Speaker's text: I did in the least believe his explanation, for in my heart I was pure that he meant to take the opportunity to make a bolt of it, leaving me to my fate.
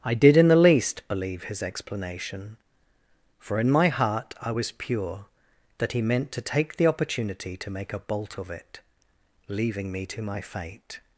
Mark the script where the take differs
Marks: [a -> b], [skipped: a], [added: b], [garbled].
I did in the least believe his explanation, for in my heart I was pure that he meant to take the opportunity to make a bolt of it, leaving me to my fate.